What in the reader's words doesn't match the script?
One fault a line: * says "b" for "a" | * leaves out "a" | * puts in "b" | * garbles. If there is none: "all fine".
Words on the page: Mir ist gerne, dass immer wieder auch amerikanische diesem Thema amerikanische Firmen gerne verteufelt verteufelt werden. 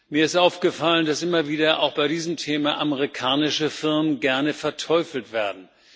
* says "aufgefallen" for "gerne"
* says "bei" for "amerikanische"
* leaves out "verteufelt"